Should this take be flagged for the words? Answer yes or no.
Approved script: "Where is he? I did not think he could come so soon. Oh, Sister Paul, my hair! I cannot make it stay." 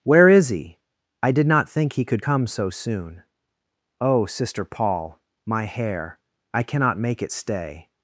no